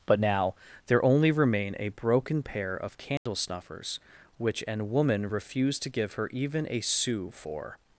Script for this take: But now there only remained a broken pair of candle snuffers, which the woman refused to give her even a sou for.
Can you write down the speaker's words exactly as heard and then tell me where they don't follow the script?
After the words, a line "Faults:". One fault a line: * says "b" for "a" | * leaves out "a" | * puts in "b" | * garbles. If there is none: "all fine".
But now there only remain a broken pair of candle snuffers, which an woman refused to give her even a sou for.
Faults:
* says "remain" for "remained"
* says "an" for "the"